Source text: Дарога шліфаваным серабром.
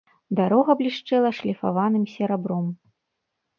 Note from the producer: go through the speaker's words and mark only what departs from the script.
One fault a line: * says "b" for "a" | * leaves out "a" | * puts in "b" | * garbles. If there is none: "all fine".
* puts in "блішчэла"